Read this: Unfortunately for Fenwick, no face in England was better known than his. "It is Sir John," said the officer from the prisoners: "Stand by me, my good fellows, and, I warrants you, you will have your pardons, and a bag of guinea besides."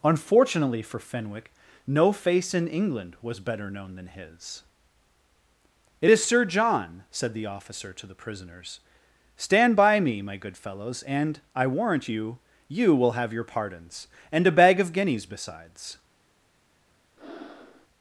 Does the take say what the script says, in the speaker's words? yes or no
no